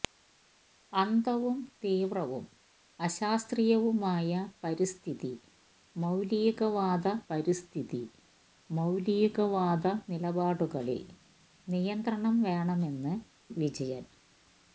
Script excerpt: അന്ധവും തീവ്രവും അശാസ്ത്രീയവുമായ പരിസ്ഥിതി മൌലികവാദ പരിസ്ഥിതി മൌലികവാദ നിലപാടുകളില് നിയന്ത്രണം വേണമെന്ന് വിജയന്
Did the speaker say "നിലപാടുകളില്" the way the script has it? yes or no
yes